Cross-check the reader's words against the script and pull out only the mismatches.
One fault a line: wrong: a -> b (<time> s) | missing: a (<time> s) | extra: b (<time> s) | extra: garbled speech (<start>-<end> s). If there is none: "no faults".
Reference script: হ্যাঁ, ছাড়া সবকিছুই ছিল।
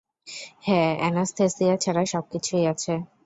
extra: অ্যানাসথেসিয়া (1.0 s)
wrong: ছিল -> আছে (2.7 s)